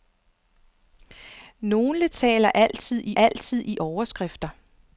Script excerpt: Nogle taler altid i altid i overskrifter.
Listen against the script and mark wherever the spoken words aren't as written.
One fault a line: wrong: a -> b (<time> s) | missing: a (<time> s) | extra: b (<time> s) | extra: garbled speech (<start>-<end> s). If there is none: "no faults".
no faults